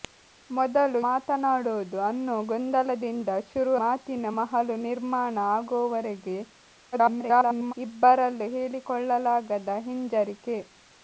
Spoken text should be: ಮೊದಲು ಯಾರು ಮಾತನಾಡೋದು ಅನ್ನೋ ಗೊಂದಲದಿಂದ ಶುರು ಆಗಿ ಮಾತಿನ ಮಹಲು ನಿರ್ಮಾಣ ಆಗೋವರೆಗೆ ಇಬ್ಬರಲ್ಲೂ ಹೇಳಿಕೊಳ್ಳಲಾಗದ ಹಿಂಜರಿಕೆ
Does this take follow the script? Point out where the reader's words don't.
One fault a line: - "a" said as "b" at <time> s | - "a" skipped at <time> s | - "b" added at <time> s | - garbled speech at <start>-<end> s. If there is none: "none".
- "ಯಾರು" skipped at 1.0 s
- "ಆಗಿ" skipped at 3.7 s
- garbled speech at 6.9-7.7 s